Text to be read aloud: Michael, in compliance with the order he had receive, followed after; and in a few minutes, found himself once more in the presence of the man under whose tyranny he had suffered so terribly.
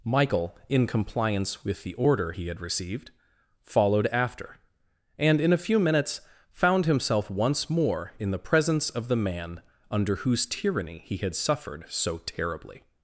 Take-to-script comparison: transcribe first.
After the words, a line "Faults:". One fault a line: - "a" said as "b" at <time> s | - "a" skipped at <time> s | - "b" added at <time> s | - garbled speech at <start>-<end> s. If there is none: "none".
Michael, in compliance with the order he had received, followed after; and in a few minutes, found himself once more in the presence of the man under whose tyranny he had suffered so terribly.
Faults:
- "receive" said as "received" at 2.6 s